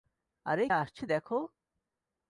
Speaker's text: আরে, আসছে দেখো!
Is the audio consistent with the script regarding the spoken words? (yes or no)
yes